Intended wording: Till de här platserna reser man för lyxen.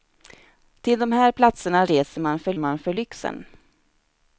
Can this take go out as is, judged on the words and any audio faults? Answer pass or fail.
fail